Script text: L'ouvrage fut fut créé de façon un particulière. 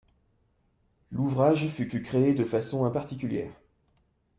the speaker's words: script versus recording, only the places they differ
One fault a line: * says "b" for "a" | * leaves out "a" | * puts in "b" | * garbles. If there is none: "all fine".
all fine